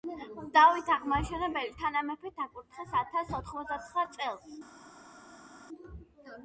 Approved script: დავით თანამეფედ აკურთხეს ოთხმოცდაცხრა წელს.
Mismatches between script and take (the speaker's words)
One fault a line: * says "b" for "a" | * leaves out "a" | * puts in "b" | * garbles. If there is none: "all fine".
* puts in "აღმაშენებელი"
* puts in "ათას"